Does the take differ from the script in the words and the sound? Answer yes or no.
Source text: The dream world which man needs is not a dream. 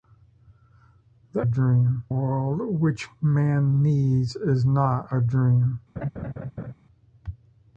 yes